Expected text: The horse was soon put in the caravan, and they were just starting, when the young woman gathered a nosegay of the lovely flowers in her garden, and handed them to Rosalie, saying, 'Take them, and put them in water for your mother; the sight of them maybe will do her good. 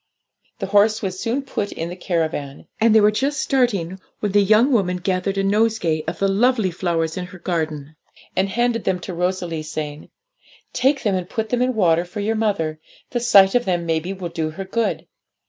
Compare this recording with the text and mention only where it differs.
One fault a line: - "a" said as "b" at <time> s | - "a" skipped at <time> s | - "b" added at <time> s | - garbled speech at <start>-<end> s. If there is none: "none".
none